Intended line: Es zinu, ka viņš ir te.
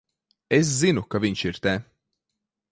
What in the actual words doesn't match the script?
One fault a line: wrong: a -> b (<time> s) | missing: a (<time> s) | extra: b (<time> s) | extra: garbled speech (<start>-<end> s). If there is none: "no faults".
no faults